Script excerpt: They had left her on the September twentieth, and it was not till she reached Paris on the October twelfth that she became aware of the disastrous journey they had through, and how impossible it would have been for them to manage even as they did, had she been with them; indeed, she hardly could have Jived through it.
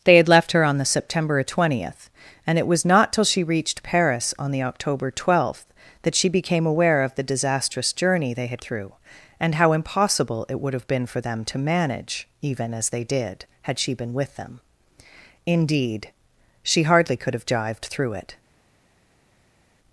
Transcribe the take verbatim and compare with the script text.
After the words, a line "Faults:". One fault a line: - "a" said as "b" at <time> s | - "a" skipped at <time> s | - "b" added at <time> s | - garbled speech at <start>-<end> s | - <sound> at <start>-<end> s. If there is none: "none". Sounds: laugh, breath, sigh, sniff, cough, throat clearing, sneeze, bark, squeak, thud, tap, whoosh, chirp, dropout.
They had left her on the September twentieth, and it was not till she reached Paris on the October twelfth that she became aware of the disastrous journey they had through, and how impossible it would have been for them to manage even as they did, had she been with them; indeed, she hardly could have Jived through it.
Faults:
none